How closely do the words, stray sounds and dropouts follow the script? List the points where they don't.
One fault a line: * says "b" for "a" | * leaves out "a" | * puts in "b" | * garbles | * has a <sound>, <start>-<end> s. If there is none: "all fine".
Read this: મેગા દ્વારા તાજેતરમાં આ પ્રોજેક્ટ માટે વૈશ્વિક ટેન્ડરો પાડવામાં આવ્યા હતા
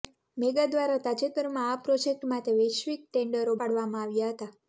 all fine